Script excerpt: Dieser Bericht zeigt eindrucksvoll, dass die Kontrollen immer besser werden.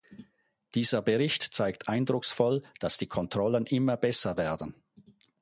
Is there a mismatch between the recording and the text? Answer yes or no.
no